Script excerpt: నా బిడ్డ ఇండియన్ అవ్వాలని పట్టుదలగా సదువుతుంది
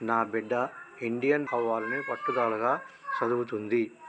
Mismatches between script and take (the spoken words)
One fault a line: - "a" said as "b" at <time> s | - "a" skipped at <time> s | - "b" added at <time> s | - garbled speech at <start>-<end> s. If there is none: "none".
none